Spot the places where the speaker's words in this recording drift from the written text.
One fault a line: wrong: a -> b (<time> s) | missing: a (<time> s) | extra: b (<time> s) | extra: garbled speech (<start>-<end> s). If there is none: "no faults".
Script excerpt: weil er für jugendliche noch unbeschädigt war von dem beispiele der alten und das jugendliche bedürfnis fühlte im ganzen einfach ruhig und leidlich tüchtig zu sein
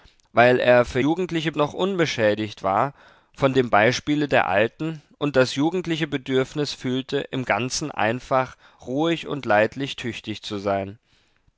no faults